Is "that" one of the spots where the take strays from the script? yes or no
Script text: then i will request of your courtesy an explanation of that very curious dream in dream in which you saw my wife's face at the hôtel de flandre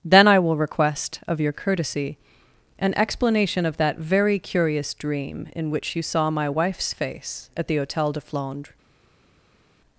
no